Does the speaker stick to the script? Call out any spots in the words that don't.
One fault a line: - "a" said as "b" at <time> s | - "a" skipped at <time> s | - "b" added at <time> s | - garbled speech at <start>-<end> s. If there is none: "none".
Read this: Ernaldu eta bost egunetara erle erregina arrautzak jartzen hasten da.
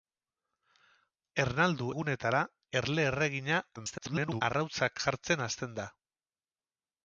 - "eta bost" skipped at 1.9 s
- garbled speech at 3.8-4.4 s